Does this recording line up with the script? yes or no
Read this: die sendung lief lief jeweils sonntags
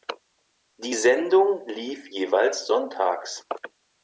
no